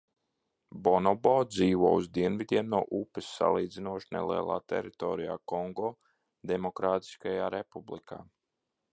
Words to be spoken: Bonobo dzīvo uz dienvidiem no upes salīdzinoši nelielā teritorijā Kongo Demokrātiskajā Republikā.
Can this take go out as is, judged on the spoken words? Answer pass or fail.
pass